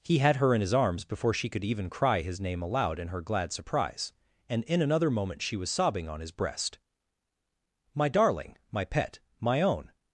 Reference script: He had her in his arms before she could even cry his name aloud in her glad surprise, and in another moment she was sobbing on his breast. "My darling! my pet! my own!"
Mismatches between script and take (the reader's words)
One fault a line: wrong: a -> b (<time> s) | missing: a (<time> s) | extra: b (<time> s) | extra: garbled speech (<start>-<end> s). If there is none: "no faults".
no faults